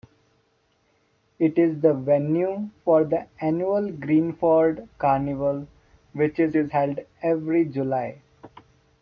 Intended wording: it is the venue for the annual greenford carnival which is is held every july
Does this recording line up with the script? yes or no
yes